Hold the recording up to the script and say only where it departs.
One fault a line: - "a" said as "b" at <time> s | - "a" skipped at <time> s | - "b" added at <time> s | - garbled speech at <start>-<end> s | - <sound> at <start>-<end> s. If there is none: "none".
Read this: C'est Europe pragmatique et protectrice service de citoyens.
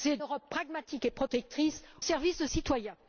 none